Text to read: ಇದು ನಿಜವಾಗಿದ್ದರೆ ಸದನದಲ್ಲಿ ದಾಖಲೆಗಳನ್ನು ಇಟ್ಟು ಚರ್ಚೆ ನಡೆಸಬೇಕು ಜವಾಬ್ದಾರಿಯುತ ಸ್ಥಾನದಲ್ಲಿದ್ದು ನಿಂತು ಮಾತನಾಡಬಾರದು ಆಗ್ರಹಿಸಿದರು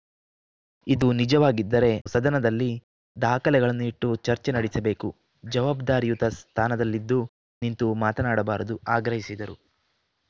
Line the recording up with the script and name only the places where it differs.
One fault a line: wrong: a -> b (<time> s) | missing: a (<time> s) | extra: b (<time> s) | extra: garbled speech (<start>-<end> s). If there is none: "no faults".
no faults